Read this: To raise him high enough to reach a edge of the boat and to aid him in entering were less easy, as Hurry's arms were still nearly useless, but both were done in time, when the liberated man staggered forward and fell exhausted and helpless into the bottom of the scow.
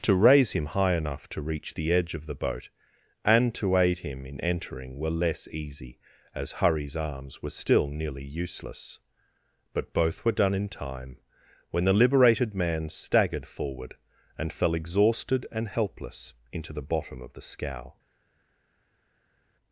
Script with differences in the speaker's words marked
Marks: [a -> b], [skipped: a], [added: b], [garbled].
To raise him high enough to reach [a -> the] edge of the boat and to aid him in entering were less easy, as Hurry's arms were still nearly useless, but both were done in time, when the liberated man staggered forward and fell exhausted and helpless into the bottom of the scow.